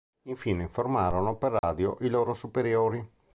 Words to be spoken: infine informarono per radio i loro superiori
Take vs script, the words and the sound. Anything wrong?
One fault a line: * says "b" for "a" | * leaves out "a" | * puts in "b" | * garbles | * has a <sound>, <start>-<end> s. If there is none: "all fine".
* has a dropout, 1.6-1.6 s